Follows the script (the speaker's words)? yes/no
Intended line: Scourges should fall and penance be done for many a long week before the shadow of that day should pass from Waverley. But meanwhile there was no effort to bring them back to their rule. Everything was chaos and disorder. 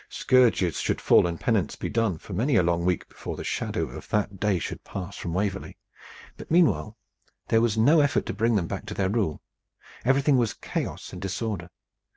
yes